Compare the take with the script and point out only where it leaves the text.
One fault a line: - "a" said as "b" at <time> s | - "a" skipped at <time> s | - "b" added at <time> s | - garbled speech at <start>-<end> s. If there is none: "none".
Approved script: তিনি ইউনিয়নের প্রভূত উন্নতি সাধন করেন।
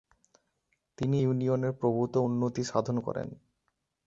none